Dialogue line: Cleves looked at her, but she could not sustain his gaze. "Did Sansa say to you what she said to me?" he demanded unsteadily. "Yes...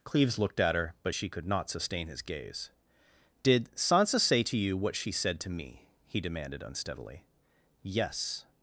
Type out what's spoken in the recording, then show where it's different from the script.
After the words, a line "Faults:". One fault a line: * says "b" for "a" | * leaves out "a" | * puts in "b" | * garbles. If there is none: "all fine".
Cleves looked at her, but she could not sustain his gaze. "Did Sansa say to you what she said to me?" he demanded unsteadily. "Yes...
Faults:
all fine